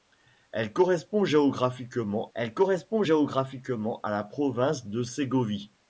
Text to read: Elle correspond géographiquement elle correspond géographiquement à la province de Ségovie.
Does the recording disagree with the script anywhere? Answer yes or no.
no